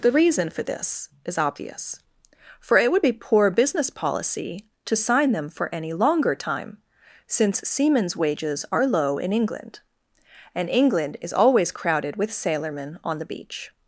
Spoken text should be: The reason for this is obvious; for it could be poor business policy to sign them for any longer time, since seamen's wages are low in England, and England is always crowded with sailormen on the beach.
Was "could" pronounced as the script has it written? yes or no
no